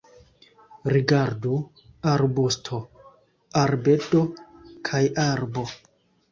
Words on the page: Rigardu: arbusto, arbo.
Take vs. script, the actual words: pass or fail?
fail